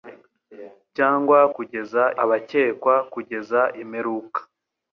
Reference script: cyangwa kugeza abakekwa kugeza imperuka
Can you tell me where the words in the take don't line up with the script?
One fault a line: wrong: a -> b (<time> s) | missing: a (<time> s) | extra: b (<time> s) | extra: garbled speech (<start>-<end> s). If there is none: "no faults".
no faults